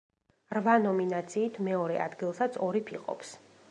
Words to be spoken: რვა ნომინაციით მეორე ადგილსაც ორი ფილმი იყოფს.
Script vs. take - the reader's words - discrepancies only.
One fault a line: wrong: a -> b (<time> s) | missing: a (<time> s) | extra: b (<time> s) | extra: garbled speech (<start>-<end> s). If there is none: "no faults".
missing: ფილმი (2.9 s)